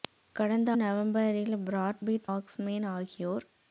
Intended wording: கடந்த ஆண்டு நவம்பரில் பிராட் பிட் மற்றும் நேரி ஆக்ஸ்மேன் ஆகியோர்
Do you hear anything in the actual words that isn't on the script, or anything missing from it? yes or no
yes